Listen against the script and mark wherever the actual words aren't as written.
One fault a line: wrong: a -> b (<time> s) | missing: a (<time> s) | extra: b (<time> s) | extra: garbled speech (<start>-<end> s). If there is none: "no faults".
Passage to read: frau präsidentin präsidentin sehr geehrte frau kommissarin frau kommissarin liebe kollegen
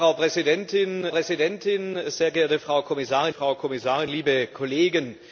no faults